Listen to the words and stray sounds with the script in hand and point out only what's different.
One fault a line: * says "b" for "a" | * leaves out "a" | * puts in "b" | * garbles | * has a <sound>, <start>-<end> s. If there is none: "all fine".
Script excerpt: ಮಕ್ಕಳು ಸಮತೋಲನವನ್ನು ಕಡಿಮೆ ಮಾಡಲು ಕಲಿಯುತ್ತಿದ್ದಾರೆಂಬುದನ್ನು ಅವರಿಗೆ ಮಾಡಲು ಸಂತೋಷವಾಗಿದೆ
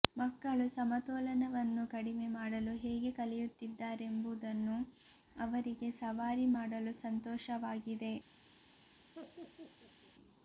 * puts in "ಹೇಗೆ"
* puts in "ಸವಾರಿ"
* has a laugh, 9.1-10.1 s